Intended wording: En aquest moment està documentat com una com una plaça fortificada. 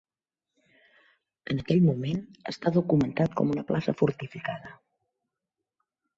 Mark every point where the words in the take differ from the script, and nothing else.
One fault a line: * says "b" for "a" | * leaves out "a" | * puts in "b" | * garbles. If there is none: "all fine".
* says "aquell" for "aquest"
* leaves out "com una"